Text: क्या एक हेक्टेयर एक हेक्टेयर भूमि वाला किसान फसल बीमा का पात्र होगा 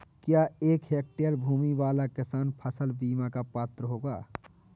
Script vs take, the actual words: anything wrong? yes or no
yes